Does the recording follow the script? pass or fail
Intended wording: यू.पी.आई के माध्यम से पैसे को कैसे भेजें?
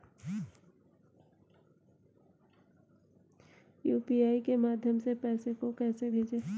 pass